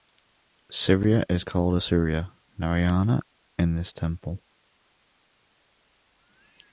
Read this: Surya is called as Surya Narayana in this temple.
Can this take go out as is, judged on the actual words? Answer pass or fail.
pass